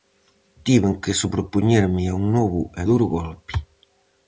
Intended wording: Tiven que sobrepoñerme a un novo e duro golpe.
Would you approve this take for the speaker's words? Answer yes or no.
yes